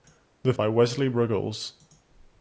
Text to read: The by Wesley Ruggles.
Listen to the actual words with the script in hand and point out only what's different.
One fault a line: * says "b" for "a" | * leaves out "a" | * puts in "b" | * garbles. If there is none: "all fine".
all fine